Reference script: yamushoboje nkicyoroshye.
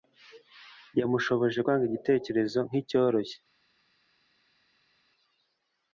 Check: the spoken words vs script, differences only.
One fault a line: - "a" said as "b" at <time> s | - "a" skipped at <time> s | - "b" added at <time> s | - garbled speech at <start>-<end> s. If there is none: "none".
- "kwanga igitekerezo" added at 1.6 s